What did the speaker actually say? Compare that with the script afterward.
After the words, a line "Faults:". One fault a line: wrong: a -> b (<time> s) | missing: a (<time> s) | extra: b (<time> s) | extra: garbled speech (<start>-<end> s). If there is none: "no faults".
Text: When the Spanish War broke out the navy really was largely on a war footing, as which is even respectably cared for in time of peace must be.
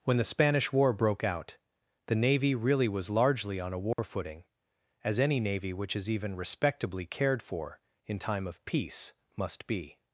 When the Spanish War broke out the navy really was largely on a war footing, as any navy which is even respectably cared for in time of peace must be.
Faults:
extra: any navy (5.2 s)